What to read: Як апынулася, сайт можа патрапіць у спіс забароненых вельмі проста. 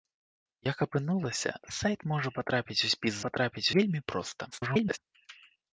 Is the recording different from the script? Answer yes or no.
yes